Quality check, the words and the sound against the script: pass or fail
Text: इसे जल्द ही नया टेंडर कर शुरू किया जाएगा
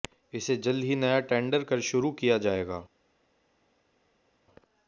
pass